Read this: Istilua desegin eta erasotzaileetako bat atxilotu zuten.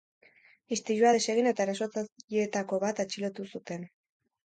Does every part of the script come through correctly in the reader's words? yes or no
yes